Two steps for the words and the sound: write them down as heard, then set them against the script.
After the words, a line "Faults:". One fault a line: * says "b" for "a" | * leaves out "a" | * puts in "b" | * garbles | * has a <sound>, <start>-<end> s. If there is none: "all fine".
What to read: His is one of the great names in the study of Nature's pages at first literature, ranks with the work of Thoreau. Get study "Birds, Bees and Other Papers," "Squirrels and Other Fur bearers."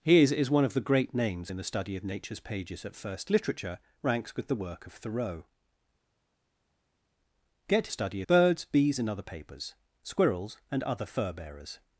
His is one of the great names in the study of Nature's pages at first literature, ranks with the work of Thoreau. Get study "Birds, Bees and Other Papers," "Squirrels and Other Fur bearers."
Faults:
all fine